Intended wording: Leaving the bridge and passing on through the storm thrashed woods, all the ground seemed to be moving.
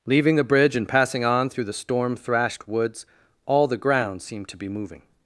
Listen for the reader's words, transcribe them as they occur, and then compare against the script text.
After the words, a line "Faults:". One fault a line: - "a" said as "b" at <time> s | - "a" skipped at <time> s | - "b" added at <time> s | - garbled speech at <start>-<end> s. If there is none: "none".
Leaving the bridge and passing on through the storm thrashed woods, all the ground seemed to be moving.
Faults:
none